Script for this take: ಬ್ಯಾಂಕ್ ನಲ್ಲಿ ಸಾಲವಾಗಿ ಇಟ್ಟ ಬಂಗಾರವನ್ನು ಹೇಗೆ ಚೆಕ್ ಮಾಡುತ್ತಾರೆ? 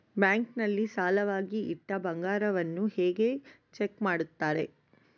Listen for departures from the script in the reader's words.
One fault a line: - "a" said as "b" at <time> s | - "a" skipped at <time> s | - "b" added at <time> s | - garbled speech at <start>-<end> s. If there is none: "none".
none